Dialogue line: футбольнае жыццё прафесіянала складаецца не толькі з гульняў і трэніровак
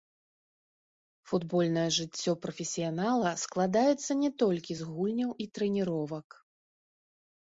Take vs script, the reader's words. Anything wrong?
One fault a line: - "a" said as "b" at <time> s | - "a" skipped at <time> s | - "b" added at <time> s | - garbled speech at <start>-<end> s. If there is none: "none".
none